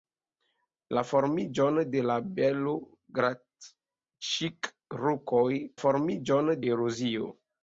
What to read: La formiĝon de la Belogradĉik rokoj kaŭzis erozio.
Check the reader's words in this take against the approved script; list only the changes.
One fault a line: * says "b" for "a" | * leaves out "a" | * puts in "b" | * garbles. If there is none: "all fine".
* says "formiĝon" for "kaŭzis"